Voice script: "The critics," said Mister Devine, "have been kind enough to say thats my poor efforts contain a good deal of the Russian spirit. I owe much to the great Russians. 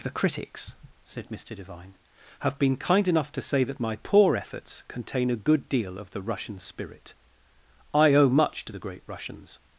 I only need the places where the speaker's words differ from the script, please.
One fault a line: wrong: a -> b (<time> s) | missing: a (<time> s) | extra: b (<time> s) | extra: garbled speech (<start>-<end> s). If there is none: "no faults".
wrong: thats -> that (3.6 s)